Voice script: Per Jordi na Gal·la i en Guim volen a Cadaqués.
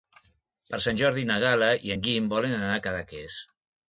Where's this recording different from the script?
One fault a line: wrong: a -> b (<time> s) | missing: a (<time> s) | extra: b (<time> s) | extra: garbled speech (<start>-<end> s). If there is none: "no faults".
extra: Sant (0.8 s)
extra: anar (2.6 s)